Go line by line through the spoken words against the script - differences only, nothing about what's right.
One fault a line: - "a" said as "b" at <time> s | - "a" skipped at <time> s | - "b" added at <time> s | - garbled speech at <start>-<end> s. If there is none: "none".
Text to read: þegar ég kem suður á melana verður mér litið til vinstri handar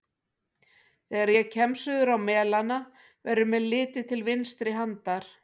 none